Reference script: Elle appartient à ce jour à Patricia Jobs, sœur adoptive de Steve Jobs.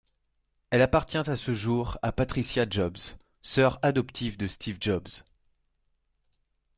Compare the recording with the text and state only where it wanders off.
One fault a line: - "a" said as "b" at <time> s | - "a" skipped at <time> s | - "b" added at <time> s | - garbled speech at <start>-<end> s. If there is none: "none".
none